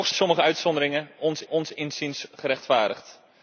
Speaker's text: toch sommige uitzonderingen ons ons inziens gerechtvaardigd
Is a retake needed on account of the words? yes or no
no